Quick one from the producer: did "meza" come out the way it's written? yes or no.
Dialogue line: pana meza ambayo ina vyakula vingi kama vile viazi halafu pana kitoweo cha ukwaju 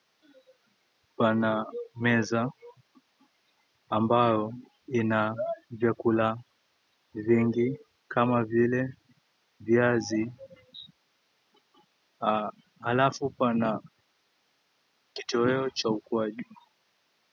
yes